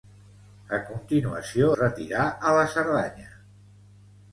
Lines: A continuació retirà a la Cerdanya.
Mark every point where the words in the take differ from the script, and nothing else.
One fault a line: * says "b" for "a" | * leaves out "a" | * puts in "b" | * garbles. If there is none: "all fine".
all fine